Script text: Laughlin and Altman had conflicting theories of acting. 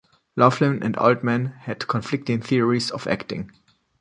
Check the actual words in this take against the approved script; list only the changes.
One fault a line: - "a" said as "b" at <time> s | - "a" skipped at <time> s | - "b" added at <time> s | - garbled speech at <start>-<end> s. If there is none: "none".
none